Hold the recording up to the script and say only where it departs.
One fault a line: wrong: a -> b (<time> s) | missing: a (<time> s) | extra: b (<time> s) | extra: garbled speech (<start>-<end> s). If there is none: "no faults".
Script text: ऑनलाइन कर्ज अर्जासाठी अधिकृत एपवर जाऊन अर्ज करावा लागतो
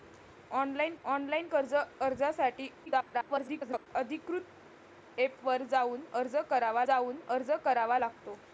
extra: ऑनलाइन (1.0 s)
extra: garbled speech (2.9-3.9 s)
extra: जाऊन अर्ज करावा (6.9 s)